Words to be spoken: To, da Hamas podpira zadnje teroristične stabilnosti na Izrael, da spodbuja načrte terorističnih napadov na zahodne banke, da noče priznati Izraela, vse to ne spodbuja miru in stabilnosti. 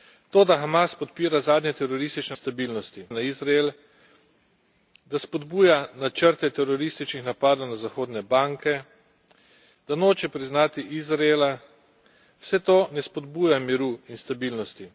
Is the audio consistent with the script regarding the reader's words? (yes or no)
yes